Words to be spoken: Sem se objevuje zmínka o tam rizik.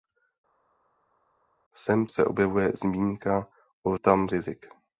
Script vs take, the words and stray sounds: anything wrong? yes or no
no